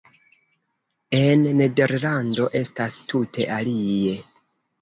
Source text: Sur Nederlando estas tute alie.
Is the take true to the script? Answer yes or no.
no